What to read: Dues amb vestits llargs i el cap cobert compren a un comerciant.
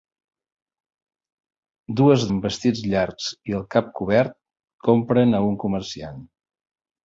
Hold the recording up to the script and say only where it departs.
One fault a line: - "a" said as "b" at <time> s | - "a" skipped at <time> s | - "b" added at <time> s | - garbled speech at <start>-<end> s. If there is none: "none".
none